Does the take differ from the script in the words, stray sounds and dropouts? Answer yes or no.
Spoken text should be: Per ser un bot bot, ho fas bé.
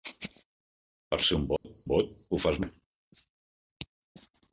yes